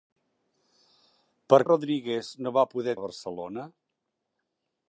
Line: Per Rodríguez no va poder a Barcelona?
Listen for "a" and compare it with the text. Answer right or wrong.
right